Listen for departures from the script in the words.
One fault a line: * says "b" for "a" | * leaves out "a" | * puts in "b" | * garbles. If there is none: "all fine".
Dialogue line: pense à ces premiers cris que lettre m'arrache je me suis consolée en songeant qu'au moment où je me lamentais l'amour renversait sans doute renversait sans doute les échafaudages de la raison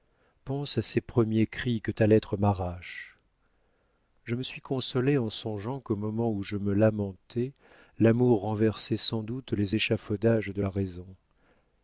* puts in "ta"
* leaves out "renversait sans doute"